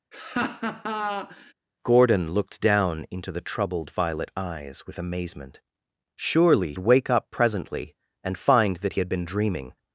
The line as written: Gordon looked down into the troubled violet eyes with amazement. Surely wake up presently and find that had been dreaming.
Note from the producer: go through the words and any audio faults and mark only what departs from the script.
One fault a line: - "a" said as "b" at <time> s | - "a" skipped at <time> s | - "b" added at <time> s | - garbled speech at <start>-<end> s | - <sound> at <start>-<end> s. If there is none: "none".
- laugh at 0.1-1.5 s